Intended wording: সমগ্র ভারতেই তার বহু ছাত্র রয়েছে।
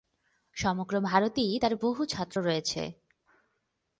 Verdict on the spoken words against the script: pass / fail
pass